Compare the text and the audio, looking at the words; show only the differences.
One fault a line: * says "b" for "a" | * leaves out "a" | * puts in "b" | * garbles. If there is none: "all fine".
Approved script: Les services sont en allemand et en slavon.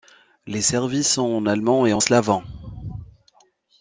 all fine